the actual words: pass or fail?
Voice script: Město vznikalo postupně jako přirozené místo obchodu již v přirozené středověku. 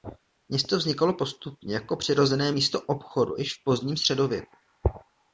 fail